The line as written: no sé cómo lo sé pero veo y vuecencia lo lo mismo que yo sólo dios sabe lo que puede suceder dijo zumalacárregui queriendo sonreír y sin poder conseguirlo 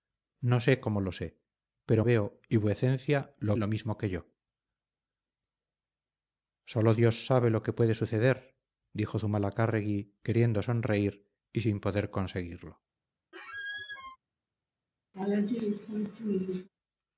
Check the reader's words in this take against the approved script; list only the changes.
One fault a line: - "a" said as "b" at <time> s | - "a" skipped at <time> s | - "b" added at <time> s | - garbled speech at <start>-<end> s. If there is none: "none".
none